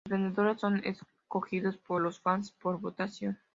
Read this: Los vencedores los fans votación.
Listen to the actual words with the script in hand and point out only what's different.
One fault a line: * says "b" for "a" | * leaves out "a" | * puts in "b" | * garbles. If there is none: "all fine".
* puts in "son escogidos por"
* puts in "por"